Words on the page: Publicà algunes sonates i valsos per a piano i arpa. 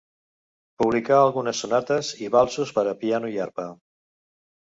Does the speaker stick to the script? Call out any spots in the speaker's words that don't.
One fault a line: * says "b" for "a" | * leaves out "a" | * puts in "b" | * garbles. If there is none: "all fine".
all fine